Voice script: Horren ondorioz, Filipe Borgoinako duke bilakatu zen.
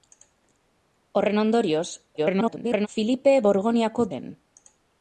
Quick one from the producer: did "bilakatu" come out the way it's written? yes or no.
no